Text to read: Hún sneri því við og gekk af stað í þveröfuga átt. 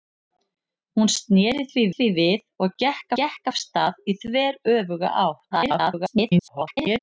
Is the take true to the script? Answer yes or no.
no